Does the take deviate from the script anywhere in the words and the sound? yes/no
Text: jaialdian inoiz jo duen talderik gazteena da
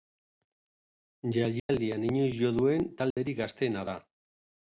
yes